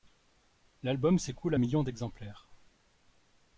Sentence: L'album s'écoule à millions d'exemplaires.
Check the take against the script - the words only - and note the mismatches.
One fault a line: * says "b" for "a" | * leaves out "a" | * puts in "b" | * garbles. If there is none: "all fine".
all fine